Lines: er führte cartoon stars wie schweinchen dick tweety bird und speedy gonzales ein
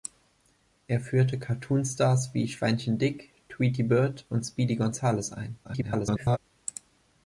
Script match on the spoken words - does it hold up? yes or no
no